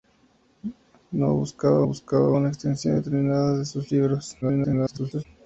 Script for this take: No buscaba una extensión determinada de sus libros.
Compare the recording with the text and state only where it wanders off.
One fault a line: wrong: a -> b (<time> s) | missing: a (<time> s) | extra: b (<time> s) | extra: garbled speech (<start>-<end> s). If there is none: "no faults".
extra: buscaba (1.8 s)
extra: garbled speech (4.4-5.3 s)